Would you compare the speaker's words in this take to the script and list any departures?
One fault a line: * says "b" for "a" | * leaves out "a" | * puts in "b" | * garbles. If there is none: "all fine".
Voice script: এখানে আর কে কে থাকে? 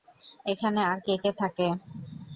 all fine